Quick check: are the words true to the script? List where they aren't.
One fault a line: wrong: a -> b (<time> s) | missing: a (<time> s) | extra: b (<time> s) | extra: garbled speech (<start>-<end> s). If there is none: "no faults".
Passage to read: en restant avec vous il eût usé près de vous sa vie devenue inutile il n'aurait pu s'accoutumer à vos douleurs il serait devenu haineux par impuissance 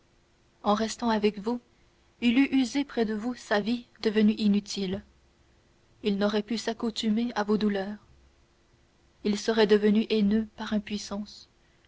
no faults